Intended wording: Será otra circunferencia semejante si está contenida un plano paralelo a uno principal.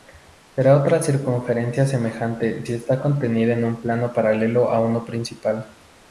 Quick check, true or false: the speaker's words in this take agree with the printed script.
false